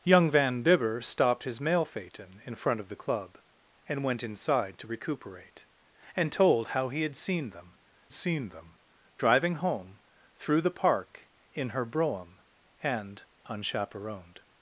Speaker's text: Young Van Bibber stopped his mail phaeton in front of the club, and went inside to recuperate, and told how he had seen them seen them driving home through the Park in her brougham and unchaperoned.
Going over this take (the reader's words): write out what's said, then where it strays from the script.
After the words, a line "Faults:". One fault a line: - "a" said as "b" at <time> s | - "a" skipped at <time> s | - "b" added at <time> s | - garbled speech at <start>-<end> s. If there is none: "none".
Young Van Bibber stopped his mail phaeton in front of the club, and went inside to recuperate, and told how he had seen them seen them driving home through the Park in her brougham and unchaperoned.
Faults:
none